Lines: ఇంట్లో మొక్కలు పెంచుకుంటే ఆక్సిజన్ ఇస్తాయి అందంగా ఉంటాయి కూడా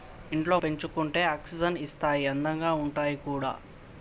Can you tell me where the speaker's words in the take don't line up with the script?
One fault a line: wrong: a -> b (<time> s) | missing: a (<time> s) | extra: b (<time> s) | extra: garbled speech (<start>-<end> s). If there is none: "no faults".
missing: మొక్కలు (0.6 s)